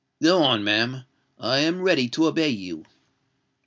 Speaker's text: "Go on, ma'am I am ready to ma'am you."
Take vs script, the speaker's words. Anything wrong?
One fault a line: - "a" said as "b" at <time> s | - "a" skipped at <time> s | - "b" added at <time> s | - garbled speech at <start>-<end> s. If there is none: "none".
- "ma'am" said as "obey" at 2.2 s